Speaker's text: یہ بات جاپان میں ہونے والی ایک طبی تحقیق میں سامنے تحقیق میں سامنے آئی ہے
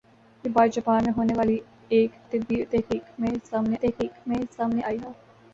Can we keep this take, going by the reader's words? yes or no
yes